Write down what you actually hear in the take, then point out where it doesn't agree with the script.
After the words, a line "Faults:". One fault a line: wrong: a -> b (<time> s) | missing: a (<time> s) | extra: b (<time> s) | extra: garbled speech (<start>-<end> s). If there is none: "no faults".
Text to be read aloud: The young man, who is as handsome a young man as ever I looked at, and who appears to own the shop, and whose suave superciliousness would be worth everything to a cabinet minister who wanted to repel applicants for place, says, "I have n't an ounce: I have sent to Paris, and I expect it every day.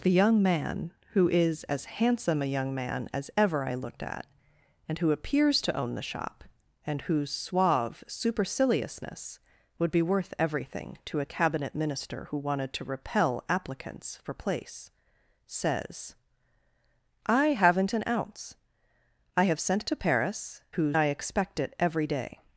The young man, who is as handsome a young man as ever I looked at, and who appears to own the shop, and whose suave superciliousness would be worth everything to a cabinet minister who wanted to repel applicants for place, says, "I have n't an ounce: I have sent to Paris, whose I expect it every day.
Faults:
wrong: and -> whose (20.7 s)